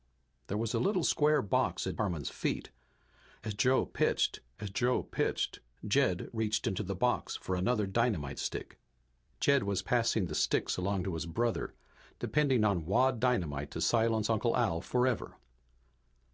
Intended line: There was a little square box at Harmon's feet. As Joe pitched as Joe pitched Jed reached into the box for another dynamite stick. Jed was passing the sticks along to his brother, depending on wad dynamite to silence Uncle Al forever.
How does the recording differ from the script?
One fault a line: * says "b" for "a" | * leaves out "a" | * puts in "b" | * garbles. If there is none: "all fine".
all fine